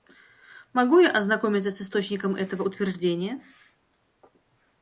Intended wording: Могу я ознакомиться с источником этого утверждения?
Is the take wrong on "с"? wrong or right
right